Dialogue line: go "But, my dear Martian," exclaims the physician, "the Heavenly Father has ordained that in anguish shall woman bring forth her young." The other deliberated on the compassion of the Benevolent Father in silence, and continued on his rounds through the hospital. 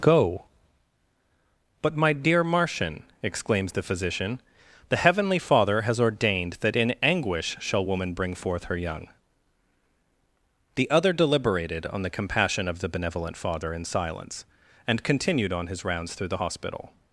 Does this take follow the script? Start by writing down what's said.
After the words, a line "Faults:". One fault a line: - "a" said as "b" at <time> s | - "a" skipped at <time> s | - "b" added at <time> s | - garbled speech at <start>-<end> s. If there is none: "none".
go "But, my dear Martian," exclaims the physician, "the Heavenly Father has ordained that in anguish shall woman bring forth her young." The other deliberated on the compassion of the Benevolent Father in silence, and continued on his rounds through the hospital.
Faults:
none